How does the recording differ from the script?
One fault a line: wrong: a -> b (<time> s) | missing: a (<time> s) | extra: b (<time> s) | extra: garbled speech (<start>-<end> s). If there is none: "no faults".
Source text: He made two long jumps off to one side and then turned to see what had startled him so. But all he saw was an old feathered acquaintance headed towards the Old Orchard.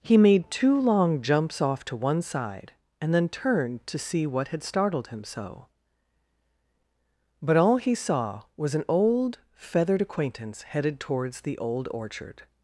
no faults